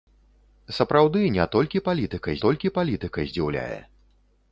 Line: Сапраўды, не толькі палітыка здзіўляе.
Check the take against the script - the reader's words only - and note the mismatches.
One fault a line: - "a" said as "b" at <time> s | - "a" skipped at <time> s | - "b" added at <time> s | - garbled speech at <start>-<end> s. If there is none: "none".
- "толькі палітыка" added at 2.5 s